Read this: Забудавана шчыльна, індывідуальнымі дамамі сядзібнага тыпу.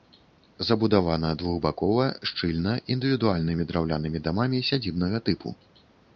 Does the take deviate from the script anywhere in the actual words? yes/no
yes